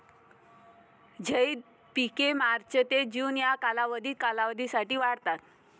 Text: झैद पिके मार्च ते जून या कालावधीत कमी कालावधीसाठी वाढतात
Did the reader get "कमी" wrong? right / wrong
wrong